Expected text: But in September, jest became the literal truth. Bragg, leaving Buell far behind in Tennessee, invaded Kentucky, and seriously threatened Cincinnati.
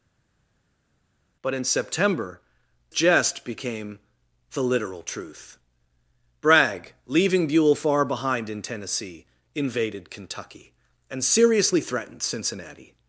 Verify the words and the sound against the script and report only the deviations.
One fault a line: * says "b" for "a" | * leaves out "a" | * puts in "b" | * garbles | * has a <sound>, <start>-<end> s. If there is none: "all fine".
all fine